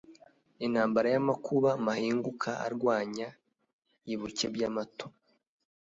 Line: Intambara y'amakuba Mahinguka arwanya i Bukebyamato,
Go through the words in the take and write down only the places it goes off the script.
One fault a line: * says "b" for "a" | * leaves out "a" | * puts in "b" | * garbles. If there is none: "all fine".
all fine